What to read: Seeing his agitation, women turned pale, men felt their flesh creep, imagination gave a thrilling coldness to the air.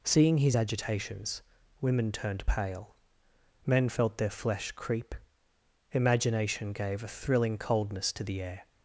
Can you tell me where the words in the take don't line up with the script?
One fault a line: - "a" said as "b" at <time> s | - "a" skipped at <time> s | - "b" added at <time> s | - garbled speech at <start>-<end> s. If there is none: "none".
- "agitation" said as "agitations" at 0.5 s